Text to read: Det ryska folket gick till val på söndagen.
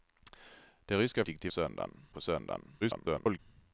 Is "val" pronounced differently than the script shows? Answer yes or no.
yes